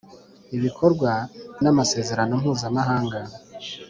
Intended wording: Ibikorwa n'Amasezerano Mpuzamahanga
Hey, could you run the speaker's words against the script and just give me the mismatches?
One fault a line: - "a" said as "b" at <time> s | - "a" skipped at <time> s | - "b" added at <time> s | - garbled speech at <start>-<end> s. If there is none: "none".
none